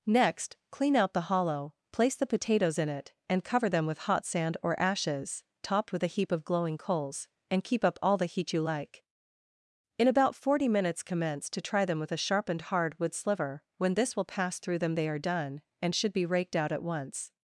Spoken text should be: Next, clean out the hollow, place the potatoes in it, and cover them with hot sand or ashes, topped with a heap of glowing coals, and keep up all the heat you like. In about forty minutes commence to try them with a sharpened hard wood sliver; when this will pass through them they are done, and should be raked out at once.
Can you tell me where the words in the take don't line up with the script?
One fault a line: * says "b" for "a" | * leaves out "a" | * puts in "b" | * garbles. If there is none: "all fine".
all fine